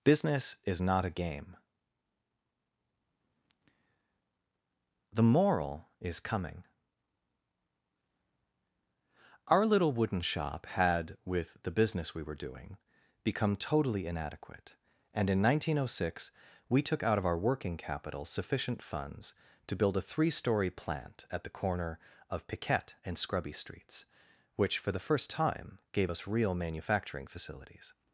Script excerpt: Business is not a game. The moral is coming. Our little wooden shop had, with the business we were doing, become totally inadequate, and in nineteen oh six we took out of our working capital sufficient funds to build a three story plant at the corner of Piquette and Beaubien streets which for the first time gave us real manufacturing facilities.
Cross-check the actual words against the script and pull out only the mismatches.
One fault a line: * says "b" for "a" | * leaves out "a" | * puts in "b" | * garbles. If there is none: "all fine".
* says "Scrubby" for "Beaubien"